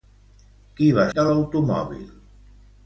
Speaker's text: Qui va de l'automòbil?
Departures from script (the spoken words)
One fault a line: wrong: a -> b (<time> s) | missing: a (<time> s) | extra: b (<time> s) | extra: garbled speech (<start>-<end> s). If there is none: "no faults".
no faults